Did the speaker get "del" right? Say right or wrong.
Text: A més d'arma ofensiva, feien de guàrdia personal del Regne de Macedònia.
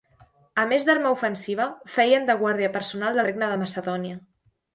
wrong